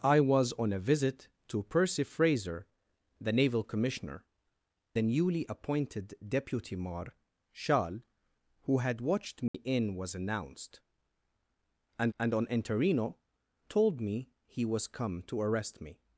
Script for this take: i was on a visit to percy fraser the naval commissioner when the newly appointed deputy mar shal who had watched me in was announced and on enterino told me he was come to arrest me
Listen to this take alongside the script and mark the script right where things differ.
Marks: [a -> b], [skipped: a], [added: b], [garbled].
i was on a visit to percy fraser the naval commissioner [skipped: when] the newly appointed deputy mar shal who had watched me in was announced and [added: and] on enterino told me he was come to arrest me